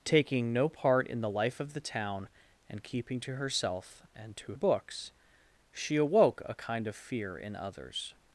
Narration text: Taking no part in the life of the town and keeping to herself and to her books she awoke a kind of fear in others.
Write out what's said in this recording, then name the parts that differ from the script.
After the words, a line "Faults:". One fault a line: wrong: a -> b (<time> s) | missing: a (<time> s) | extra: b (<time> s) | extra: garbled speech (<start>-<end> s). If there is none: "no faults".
Taking no part in the life of the town and keeping to herself and to books she awoke a kind of fear in others.
Faults:
missing: her (4.5 s)